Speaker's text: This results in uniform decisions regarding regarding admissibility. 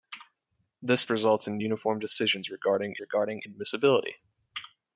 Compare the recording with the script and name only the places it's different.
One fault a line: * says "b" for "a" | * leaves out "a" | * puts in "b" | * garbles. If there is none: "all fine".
all fine